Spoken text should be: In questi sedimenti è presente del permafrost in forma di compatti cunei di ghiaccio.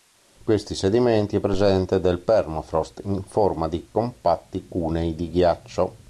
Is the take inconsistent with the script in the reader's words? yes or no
no